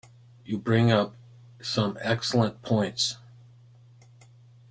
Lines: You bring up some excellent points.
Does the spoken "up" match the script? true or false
true